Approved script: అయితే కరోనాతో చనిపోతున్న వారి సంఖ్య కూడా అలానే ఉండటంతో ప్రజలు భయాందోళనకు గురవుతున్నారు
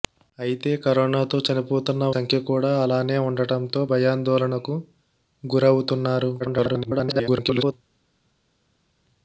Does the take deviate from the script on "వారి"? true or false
true